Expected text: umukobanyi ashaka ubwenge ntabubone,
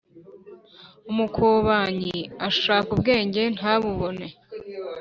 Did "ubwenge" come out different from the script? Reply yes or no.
no